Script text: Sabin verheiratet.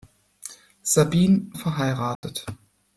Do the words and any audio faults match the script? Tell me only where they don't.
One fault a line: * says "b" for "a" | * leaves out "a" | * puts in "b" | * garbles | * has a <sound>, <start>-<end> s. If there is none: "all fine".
* has a dropout, 2.1-2.2 s